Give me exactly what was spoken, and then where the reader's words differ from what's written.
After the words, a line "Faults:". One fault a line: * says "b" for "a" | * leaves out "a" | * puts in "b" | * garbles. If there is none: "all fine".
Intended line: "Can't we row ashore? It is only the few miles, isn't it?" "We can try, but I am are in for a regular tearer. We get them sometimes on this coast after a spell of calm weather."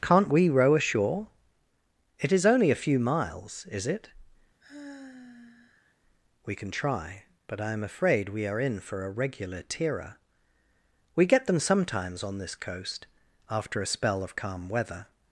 "Can't we row ashore? It is only a few miles, is it?" "We can try, but I am afraid we are in for a regular tearer. We get them sometimes on this coast after a spell of calm weather."
Faults:
* says "a" for "the"
* says "is" for "isn't"
* puts in "afraid we"